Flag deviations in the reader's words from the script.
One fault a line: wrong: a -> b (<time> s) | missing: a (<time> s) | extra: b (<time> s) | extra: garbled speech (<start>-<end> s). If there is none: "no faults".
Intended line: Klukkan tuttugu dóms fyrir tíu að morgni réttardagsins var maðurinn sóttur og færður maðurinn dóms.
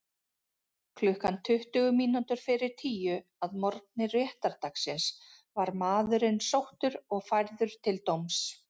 wrong: dóms -> mínútur (2.0 s)
wrong: maðurinn -> til (7.9 s)